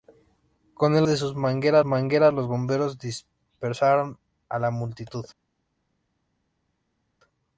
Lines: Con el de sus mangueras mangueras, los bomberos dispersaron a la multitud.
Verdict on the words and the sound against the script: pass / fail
pass